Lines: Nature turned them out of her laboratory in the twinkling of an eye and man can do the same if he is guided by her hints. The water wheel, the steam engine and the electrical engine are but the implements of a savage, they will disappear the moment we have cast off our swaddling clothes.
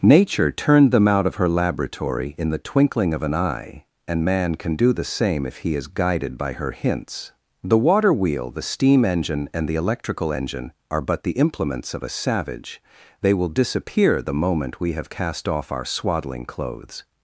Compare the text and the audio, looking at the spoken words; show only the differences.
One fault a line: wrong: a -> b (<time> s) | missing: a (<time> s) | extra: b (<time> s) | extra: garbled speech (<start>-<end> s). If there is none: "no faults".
no faults